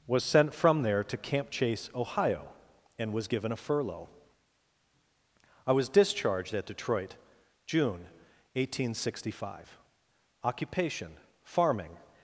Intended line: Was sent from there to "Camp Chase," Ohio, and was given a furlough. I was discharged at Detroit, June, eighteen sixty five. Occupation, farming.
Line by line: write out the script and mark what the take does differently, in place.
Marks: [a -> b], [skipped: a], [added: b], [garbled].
Was sent from there to "Camp Chase," Ohio, and was given a furlough. I was discharged at Detroit, June, eighteen sixty five. Occupation, farming.